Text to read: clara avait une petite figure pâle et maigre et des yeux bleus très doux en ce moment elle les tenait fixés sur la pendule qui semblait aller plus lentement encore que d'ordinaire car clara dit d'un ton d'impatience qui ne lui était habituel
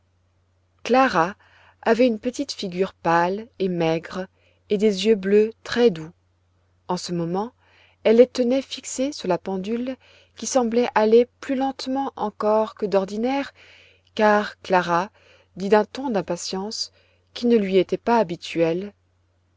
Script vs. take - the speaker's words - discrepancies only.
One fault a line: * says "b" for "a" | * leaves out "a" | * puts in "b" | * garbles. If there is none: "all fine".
* puts in "pas"